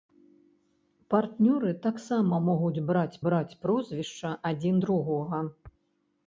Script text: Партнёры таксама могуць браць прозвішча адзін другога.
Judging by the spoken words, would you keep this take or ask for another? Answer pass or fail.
fail